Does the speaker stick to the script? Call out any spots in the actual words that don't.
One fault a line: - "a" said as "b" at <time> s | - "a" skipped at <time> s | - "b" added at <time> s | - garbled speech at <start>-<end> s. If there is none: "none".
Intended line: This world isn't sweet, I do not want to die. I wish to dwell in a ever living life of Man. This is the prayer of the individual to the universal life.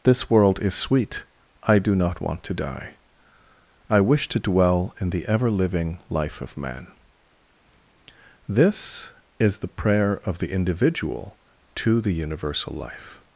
- "isn't" said as "is" at 0.6 s
- "a" said as "the" at 5.1 s